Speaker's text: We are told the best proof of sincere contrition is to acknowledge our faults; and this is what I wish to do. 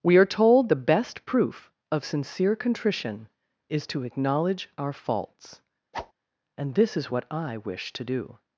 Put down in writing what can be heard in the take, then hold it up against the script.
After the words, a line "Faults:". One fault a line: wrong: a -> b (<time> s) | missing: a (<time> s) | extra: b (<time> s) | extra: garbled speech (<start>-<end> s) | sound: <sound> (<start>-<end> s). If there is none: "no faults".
We are told the best proof of sincere contrition is to acknowledge our faults; and this is what I wish to do.
Faults:
sound: whoosh (5.9-6.1 s)